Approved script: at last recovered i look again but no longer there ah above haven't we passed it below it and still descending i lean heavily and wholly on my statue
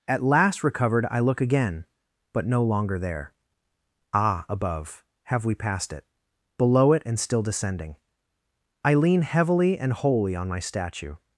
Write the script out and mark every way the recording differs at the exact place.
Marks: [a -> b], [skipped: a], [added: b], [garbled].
at last recovered i look again but no longer there ah above [haven't -> have] we passed it below it and still descending i lean heavily and wholly on my statue